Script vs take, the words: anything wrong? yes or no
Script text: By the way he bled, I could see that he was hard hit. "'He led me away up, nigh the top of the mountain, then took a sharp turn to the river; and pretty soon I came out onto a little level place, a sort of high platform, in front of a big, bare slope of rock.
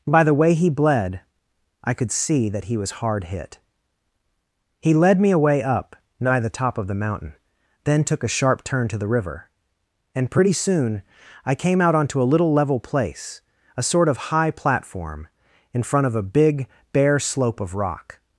no